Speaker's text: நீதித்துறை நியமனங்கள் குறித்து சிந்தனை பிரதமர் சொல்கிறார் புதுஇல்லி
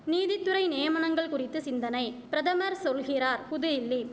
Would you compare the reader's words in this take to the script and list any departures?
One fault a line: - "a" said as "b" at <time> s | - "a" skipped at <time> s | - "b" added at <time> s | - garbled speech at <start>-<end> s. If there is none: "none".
none